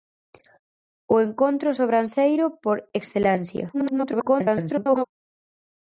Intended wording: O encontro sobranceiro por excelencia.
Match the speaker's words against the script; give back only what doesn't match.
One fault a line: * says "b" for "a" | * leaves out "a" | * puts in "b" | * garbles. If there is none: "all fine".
* garbles